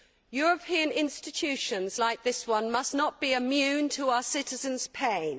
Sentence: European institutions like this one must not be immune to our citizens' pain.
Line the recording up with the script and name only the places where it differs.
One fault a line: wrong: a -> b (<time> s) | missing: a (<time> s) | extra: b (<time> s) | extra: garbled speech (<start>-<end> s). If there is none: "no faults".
no faults